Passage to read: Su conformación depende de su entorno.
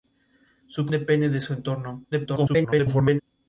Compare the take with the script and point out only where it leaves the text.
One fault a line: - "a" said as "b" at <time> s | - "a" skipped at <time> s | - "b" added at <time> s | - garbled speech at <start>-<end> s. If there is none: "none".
- "conformación" skipped at 0.9 s
- garbled speech at 2.1-3.2 s